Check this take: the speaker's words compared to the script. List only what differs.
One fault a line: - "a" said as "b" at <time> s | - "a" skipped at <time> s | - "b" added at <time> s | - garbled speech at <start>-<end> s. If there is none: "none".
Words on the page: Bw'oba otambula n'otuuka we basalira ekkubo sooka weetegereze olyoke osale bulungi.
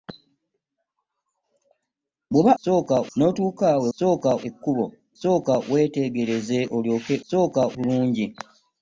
- "otambula" said as "sooka" at 2.6 s
- "basalira" said as "sooka" at 4.0 s
- "osale" said as "sooka" at 7.3 s